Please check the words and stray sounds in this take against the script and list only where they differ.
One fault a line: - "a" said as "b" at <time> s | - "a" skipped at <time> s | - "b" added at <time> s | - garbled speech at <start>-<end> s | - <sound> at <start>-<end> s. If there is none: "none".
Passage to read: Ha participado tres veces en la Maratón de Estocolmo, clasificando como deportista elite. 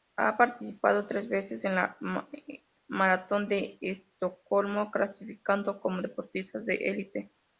- "de" added at 6.6 s